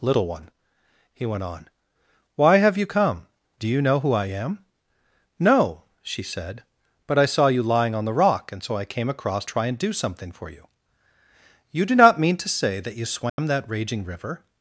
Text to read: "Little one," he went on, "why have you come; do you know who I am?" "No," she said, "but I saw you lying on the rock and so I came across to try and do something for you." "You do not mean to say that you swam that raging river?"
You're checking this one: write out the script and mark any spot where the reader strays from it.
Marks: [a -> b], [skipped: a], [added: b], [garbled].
"Little one," he went on, "why have you come; do you know who I am?" "No," she said, "but I saw you lying on the rock and so I came across [skipped: to] try and do something for you." "You do not mean to say that you swam that raging river?"